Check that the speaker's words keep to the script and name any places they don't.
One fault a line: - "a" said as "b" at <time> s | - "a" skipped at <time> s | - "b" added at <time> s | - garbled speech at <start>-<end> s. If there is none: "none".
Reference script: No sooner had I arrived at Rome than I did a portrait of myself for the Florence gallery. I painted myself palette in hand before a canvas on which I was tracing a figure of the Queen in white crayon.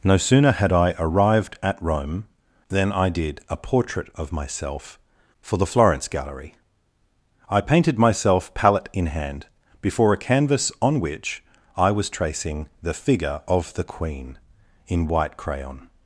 - "a" said as "the" at 12.8 s